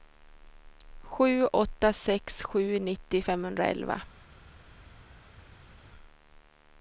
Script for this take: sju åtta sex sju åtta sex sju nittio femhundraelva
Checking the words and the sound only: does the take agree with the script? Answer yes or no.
no